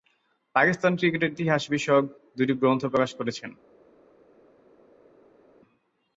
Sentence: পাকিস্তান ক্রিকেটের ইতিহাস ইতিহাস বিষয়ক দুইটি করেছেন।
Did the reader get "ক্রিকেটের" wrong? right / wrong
right